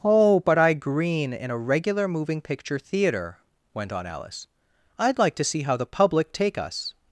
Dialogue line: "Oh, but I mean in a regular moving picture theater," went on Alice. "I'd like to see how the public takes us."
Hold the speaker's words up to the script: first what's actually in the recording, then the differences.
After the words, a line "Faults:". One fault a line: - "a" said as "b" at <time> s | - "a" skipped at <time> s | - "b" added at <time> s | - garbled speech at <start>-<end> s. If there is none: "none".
"Oh, but I green in a regular moving picture theater," went on Alice. "I'd like to see how the public take us."
Faults:
- "mean" said as "green" at 0.7 s
- "takes" said as "take" at 6.3 s